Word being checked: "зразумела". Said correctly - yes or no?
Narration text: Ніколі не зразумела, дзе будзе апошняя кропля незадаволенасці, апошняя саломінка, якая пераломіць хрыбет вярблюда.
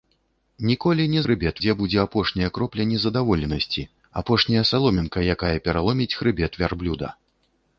no